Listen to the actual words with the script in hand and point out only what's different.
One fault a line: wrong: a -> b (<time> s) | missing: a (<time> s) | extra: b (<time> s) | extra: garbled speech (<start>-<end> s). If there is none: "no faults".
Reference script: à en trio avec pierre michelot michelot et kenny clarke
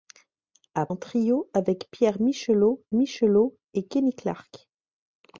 no faults